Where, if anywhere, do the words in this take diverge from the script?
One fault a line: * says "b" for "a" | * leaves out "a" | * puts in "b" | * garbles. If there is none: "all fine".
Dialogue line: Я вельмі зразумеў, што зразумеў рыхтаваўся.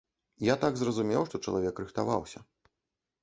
* says "так" for "вельмі"
* says "чалавек" for "зразумеў"